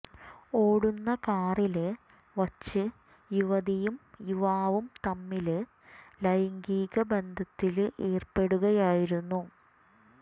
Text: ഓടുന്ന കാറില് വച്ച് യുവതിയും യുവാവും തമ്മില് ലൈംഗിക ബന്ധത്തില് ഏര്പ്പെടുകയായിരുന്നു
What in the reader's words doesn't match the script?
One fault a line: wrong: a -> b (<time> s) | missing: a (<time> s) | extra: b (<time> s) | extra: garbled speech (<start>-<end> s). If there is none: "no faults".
no faults